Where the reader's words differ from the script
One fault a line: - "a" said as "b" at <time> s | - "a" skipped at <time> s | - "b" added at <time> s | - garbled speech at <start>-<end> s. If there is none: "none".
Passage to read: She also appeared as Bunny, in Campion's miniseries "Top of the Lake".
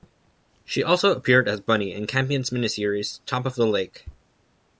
none